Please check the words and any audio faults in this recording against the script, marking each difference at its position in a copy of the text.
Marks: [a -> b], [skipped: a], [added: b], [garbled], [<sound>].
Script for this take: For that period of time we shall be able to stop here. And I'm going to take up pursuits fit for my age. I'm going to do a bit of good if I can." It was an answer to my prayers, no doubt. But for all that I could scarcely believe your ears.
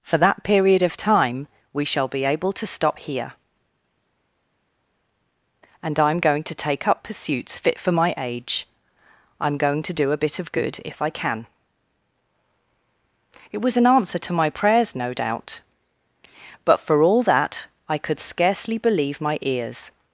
For that period of time we shall be able to stop here. And I'm going to take up pursuits fit for my age. I'm going to do a bit of good if I can." It was an answer to my prayers, no doubt. But for all that I could scarcely believe [your -> my] ears.